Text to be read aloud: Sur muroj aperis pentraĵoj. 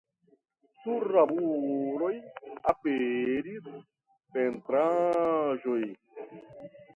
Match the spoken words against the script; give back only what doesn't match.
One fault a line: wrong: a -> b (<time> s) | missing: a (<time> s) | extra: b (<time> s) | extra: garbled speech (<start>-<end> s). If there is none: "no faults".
extra: la (1.1 s)